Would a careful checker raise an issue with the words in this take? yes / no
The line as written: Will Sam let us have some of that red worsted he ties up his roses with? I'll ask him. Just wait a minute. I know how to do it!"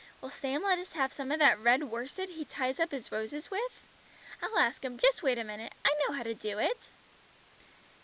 no